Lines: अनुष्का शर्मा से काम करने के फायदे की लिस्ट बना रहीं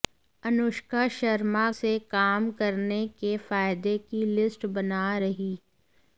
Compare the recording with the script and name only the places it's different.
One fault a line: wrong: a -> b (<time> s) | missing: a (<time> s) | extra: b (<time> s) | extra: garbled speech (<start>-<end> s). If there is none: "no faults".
no faults